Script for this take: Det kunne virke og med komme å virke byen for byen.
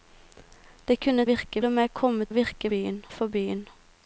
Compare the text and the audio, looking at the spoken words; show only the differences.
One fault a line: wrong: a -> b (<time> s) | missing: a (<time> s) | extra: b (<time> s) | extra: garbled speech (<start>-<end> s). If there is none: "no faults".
no faults